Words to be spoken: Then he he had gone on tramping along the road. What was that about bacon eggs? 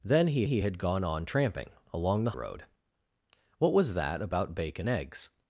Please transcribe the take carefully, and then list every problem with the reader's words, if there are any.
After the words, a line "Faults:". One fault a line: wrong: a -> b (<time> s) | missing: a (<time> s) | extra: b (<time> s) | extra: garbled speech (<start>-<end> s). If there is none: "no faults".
Then he he had gone on tramping along the road. What was that about bacon eggs?
Faults:
no faults